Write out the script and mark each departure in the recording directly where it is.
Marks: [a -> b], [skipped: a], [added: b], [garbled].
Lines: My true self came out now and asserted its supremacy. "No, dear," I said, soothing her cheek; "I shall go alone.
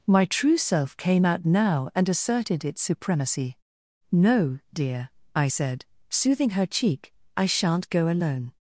My true self came out now and asserted its supremacy. "No, dear," I said, soothing her cheek; "I [shall -> shan't] go alone.